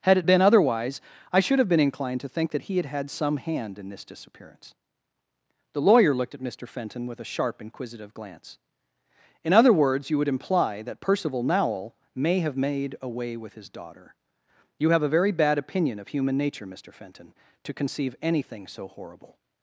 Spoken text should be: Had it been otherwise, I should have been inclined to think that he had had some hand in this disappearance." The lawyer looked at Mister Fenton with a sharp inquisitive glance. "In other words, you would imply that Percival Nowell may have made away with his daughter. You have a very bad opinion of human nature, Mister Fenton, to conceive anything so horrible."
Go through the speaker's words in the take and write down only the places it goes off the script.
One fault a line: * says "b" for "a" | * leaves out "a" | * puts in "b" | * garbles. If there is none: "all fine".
all fine